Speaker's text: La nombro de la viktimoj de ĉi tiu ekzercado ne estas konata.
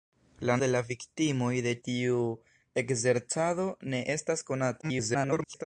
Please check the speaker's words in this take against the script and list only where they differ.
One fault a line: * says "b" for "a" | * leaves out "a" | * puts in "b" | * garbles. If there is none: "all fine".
* leaves out "nombro"
* leaves out "ĉi"
* garbles